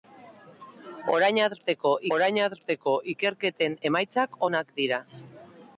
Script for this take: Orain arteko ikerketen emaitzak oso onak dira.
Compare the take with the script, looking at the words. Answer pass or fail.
fail